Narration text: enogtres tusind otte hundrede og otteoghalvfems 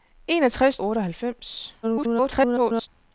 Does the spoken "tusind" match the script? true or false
false